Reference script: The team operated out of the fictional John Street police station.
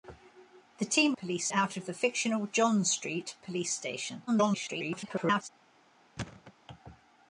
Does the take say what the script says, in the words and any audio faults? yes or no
no